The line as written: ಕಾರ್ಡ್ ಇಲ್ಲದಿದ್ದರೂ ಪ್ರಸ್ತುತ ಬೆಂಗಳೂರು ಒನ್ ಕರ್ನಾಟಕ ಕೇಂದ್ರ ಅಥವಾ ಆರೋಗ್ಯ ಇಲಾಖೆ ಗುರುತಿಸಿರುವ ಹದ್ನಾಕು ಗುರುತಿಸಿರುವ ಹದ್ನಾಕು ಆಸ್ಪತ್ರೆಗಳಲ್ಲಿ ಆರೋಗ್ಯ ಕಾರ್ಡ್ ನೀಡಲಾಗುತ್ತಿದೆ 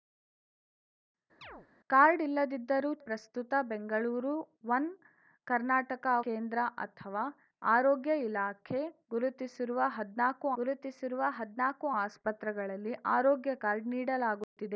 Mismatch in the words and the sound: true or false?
true